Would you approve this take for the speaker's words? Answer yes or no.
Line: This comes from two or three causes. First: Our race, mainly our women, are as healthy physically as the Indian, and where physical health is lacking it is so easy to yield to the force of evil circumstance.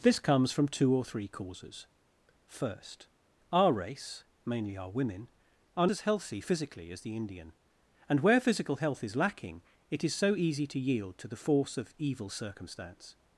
yes